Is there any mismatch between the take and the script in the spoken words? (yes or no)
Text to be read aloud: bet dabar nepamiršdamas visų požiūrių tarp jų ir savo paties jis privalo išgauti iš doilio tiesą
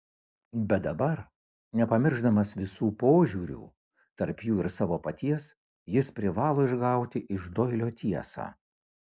no